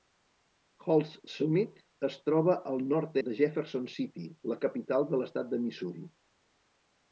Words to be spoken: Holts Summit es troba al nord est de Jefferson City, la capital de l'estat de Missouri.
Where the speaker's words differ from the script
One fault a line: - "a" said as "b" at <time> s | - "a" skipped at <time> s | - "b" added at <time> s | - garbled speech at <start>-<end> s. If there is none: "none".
- "est" skipped at 3.2 s